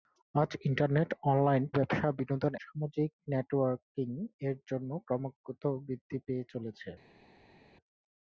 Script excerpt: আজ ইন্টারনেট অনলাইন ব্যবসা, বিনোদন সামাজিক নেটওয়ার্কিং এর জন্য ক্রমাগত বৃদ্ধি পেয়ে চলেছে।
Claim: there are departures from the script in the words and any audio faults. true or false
false